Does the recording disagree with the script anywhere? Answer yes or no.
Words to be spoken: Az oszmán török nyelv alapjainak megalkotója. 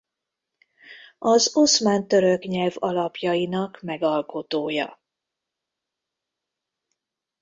no